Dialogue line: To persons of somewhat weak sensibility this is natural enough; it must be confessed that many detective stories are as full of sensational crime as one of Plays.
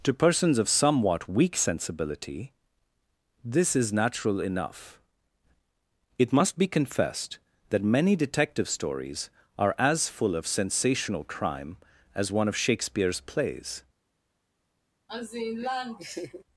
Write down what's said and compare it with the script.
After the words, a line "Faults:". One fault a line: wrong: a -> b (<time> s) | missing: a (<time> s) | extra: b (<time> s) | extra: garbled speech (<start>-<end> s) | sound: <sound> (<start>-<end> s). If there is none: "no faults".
To persons of somewhat weak sensibility this is natural enough; it must be confessed that many detective stories are as full of sensational crime as one of Shakespeare's plays.
Faults:
extra: Shakespeare's (12.6 s)
sound: laugh (15.1-16.4 s)